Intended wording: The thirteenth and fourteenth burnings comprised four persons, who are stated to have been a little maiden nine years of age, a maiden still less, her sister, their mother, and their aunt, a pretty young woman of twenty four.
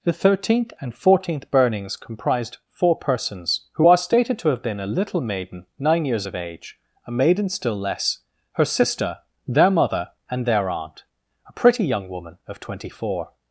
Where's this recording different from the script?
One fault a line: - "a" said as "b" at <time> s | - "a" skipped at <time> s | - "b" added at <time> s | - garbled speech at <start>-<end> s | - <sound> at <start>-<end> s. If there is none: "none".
none